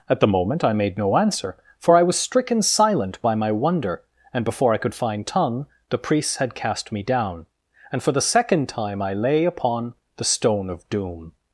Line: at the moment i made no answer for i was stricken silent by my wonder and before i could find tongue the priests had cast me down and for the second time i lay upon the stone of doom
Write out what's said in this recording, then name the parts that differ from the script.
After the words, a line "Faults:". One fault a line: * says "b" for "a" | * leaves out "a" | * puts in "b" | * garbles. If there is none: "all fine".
at the moment i made no answer for i was stricken silent by my wonder and before i could find tongue the priests had cast me down and for the second time i lay upon the stone of doom
Faults:
all fine